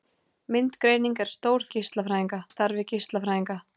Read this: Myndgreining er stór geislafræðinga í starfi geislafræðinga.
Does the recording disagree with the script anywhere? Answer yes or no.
no